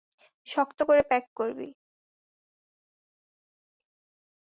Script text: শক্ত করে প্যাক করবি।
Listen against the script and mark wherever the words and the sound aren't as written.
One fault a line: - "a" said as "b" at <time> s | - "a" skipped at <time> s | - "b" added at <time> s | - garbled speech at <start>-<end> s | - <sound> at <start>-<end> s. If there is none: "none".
none